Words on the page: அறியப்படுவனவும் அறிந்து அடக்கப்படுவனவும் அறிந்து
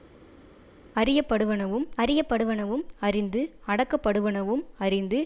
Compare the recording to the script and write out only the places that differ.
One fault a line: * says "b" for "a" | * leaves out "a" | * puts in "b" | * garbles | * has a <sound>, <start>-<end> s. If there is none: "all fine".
* puts in "அறியப்படுவனவும்"